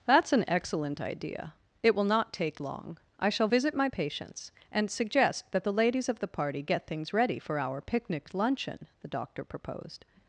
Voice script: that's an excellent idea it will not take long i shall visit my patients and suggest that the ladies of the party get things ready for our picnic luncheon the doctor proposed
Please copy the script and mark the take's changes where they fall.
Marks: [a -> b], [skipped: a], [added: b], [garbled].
that's an excellent idea it will not take long i shall visit my patients and suggest that the ladies of the party get things ready for our picnic luncheon the doctor proposed